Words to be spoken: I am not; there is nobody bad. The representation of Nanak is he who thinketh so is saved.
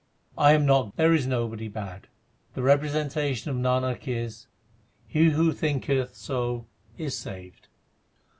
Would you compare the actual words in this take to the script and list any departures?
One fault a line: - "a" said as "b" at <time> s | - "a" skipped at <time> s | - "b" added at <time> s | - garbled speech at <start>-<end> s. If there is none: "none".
none